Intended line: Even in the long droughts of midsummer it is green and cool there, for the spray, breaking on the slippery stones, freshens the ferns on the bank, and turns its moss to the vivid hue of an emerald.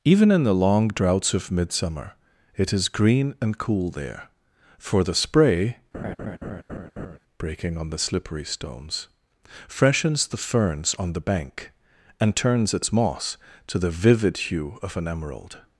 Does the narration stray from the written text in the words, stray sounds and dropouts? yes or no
yes